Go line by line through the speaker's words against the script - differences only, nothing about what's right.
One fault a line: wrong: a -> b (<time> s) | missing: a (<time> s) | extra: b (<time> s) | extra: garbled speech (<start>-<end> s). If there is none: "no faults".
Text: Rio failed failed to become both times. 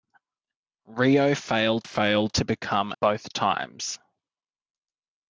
no faults